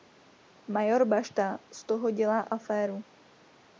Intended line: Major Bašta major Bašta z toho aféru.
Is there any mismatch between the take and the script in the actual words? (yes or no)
yes